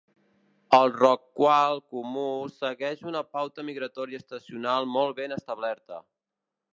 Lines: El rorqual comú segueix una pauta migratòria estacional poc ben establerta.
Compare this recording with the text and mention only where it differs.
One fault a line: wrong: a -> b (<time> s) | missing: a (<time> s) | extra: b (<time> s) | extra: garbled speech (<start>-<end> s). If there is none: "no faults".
wrong: poc -> molt (5.0 s)